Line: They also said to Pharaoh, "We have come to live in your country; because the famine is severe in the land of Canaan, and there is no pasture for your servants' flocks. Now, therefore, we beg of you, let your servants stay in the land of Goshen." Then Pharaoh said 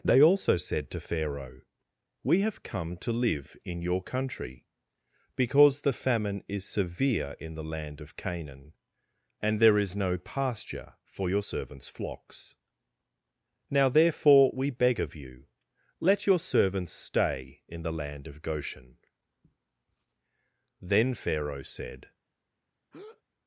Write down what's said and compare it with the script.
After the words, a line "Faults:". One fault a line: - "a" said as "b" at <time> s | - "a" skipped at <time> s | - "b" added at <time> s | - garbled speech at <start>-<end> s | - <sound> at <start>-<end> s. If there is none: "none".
They also said to Pharaoh, "We have come to live in your country; because the famine is severe in the land of Canaan, and there is no pasture for your servants' flocks. Now, therefore, we beg of you, let your servants stay in the land of Goshen." Then Pharaoh said
Faults:
- breath at 22.9-23.2 s